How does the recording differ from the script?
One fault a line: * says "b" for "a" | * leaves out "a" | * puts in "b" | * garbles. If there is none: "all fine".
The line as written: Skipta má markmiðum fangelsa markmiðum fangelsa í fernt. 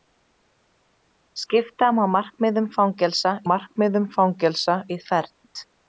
all fine